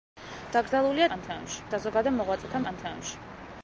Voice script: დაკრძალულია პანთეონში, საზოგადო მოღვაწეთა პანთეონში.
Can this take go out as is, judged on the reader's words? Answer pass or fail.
pass